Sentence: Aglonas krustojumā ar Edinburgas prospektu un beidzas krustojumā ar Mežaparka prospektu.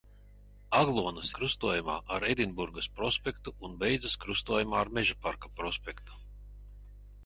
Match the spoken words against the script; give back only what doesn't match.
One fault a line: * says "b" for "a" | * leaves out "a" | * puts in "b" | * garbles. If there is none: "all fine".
all fine